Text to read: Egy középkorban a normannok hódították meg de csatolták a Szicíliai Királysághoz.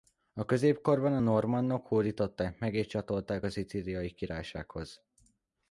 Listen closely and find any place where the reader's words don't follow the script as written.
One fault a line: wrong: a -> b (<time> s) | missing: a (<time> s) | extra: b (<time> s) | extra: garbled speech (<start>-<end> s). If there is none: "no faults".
wrong: Egy -> A (0.3 s)
wrong: de -> és (2.7 s)